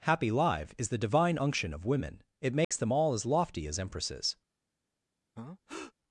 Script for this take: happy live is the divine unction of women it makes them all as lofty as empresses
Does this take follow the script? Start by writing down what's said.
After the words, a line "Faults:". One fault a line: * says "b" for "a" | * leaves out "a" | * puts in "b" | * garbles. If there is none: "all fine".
happy live is the divine unction of women it makes them all as lofty as empresses
Faults:
all fine